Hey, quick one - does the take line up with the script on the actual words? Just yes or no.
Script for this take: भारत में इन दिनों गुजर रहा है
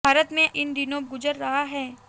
yes